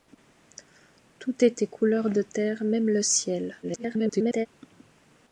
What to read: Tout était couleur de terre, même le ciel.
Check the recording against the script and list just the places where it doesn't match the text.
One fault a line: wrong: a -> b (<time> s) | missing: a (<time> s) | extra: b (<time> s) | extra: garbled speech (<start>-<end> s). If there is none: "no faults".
extra: garbled speech (3.6-4.5 s)